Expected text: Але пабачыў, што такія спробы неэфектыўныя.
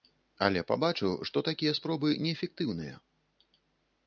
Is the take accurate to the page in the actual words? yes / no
yes